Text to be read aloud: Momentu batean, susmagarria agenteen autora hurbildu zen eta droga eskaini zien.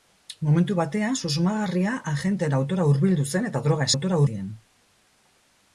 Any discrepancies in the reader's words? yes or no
yes